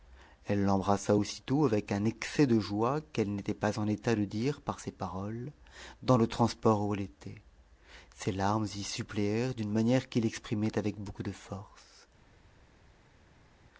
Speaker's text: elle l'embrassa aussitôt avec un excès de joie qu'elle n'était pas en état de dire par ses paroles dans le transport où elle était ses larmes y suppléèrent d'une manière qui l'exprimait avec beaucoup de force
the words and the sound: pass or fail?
pass